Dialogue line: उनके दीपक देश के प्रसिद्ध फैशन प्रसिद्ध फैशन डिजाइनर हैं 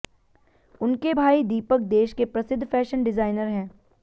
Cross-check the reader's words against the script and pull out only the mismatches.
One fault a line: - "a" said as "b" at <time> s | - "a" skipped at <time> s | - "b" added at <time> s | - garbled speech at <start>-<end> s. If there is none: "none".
- "भाई" added at 1.1 s
- "प्रसिद्ध फैशन" skipped at 3.0 s